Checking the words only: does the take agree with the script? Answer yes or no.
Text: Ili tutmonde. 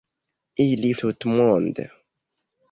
yes